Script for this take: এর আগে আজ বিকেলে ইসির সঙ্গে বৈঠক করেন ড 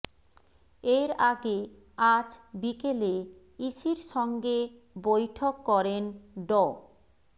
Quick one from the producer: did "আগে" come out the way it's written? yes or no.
yes